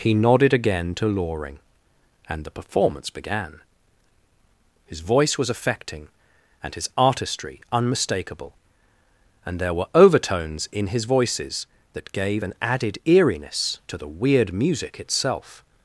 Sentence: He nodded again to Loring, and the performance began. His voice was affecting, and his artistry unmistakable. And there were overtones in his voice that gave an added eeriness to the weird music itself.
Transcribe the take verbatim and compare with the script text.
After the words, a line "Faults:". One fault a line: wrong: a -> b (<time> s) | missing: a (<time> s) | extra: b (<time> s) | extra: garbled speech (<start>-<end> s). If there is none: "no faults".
He nodded again to Loring, and the performance began. His voice was affecting, and his artistry unmistakable. And there were overtones in his voices that gave an added eeriness to the weird music itself.
Faults:
wrong: voice -> voices (11.0 s)